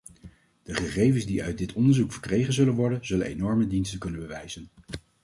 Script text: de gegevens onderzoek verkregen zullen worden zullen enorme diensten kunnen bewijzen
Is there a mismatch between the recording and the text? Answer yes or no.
yes